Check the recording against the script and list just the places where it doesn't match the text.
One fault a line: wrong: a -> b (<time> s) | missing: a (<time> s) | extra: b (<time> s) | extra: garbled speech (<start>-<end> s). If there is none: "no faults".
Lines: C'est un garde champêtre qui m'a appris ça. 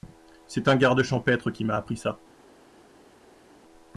no faults